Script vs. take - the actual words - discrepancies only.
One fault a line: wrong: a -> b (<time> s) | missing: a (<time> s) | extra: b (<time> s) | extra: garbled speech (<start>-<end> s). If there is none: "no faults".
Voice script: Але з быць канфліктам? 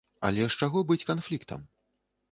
extra: чаго (0.6 s)